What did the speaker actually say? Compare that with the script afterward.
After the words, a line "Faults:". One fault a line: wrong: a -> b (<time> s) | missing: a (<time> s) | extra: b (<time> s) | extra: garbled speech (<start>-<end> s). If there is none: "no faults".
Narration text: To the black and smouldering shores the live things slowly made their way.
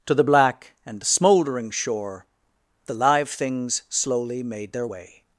To the black and smouldering shore the live things slowly made their way.
Faults:
wrong: shores -> shore (1.7 s)